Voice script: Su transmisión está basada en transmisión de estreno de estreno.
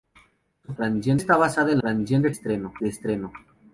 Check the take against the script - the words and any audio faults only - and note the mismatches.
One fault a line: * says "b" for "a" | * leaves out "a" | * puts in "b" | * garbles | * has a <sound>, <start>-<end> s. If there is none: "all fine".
all fine